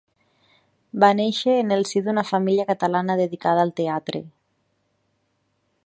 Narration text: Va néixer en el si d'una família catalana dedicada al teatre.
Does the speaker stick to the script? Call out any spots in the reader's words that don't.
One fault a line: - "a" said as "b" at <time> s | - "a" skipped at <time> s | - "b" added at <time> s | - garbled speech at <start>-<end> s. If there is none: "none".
none